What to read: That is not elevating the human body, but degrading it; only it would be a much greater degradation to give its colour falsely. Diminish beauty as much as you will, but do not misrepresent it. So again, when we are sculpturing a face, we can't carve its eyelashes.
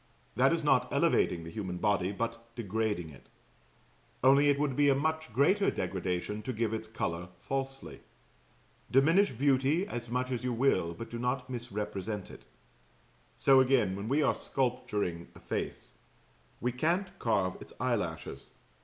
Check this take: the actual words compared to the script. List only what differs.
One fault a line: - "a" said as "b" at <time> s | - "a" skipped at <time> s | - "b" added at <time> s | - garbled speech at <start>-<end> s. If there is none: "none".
none